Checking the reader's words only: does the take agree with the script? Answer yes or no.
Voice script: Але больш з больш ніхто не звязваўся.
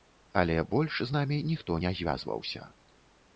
no